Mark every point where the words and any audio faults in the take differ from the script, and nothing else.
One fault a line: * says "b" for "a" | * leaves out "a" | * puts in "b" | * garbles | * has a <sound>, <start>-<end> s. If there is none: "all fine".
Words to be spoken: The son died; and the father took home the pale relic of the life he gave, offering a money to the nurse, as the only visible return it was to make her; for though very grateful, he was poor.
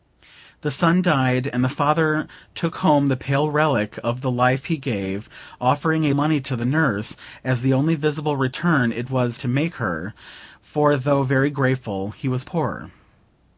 all fine